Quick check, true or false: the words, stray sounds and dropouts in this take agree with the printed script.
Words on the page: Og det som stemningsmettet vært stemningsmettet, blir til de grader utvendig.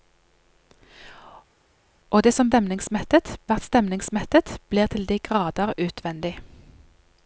true